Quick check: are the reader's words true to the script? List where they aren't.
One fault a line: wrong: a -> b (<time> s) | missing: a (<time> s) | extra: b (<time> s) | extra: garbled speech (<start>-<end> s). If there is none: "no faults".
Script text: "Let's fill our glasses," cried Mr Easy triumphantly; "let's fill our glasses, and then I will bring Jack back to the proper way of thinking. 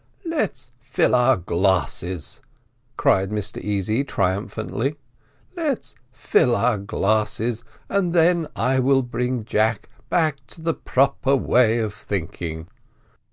no faults